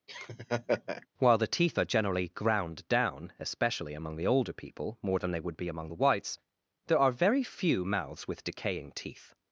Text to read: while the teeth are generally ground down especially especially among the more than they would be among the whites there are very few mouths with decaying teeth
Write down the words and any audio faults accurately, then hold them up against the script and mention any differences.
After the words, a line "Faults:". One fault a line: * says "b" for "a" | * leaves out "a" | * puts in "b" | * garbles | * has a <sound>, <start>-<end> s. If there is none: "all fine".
while the teeth are generally ground down especially among the older people more than they would be among the whites there are very few mouths with decaying teeth
Faults:
* has a laugh, 0.1-1.1 s
* leaves out "especially"
* puts in "older people"